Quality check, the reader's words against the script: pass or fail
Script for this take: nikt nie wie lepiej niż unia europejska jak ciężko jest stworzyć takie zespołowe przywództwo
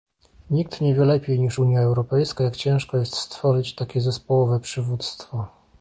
pass